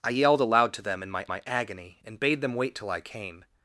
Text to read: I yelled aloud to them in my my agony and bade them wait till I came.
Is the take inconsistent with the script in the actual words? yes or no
no